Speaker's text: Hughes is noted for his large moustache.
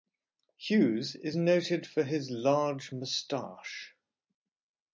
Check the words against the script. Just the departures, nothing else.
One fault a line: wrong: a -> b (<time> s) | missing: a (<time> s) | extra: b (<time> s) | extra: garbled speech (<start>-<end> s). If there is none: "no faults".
no faults